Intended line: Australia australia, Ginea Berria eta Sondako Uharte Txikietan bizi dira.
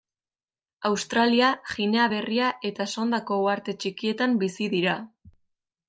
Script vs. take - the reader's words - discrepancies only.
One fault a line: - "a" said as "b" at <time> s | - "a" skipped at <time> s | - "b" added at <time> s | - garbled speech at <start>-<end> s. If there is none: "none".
- "australia" skipped at 1.5 s